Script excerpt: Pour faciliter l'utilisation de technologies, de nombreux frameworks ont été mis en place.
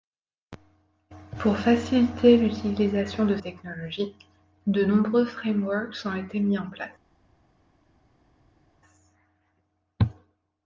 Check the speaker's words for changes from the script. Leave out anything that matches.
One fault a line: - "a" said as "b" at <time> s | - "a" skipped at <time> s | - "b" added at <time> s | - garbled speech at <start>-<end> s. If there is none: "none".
none